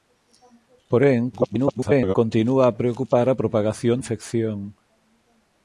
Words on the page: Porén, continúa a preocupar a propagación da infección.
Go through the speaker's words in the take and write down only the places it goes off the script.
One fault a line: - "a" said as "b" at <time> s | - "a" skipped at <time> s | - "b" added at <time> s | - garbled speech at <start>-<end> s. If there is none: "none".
- garbled speech at 1.3-2.2 s
- "da" skipped at 4.0 s